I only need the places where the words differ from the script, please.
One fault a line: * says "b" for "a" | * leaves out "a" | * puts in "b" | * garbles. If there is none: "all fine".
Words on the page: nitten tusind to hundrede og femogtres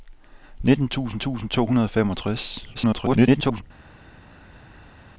* puts in "tusind"
* garbles